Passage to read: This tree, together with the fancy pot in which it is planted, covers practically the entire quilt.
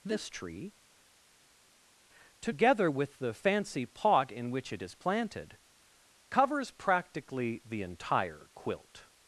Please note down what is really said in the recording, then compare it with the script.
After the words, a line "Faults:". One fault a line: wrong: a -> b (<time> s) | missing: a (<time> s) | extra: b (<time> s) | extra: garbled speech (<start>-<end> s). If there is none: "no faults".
This tree, together with the fancy pot in which it is planted, covers practically the entire quilt.
Faults:
no faults